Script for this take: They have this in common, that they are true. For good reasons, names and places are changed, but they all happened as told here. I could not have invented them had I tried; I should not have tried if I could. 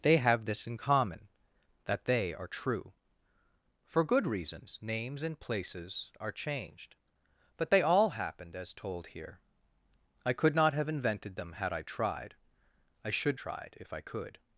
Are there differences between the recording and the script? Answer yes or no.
yes